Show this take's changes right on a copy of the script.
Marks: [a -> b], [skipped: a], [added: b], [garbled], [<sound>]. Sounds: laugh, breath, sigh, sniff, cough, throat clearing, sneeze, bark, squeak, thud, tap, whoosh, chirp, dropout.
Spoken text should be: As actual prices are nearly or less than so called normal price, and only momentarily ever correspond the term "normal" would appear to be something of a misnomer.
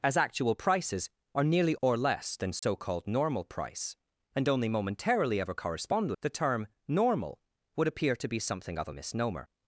As actual prices are nearly or less than so [dropout] called normal price, and only momentarily ever correspond the term "normal" would appear to be something of a misnomer.